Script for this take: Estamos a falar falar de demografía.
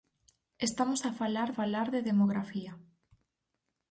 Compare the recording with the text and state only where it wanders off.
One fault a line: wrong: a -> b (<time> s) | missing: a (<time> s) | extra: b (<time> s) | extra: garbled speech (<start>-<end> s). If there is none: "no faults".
no faults